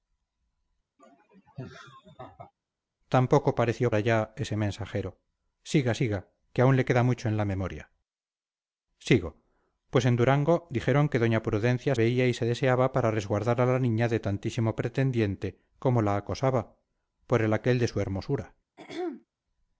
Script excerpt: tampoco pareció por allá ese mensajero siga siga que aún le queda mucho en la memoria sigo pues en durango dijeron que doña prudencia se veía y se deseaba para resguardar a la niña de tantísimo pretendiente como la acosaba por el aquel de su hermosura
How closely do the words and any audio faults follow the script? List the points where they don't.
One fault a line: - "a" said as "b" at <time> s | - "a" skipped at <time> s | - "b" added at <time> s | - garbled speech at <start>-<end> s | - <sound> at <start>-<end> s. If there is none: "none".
- laugh at 1.0-2.5 s
- "por" skipped at 3.9 s
- "se" skipped at 11.9 s
- throat clearing at 18.8-19.3 s